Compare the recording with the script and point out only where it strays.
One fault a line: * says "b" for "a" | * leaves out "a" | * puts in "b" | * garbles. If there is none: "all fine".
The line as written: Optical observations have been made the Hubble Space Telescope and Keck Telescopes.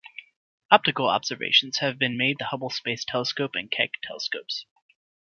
all fine